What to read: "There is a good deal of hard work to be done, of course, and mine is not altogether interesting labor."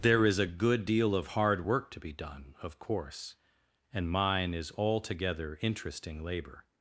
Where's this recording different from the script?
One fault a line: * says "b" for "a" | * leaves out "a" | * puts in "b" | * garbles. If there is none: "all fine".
* leaves out "not"